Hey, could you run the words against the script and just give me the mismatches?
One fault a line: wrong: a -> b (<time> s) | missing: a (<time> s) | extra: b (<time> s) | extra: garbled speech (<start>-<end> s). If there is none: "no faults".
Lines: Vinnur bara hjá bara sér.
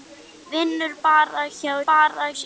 no faults